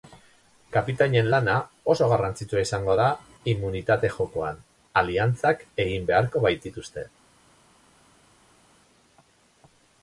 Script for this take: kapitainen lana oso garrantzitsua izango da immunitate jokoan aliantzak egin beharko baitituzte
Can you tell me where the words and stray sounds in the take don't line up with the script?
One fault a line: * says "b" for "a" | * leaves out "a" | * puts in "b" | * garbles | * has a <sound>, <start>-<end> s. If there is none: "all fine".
all fine